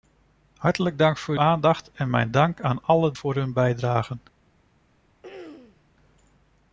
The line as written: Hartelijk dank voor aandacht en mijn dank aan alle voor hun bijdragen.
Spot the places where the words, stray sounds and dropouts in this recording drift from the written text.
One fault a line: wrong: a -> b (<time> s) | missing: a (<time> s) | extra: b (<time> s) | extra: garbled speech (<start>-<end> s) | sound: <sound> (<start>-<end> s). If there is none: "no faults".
sound: throat clearing (5.2-5.9 s)